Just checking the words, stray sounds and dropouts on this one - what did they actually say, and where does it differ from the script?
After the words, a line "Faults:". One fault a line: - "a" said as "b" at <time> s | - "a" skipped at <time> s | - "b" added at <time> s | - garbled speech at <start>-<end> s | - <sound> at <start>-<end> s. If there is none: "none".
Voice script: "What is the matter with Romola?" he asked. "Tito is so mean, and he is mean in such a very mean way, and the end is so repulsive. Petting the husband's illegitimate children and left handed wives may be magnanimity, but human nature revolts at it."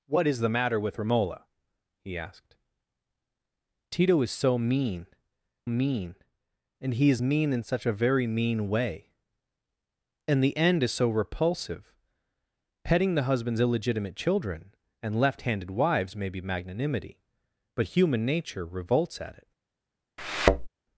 "What is the matter with Romola?" he asked. "Tito is so mean mean, and he is mean in such a very mean way, and the end is so repulsive. Petting the husband's illegitimate children and left handed wives may be magnanimity, but human nature revolts at it."
Faults:
- "mean" added at 5.7 s
- thud at 20.2-20.7 s